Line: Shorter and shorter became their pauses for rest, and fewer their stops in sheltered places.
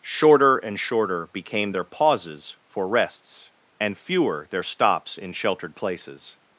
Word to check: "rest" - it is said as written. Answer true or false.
false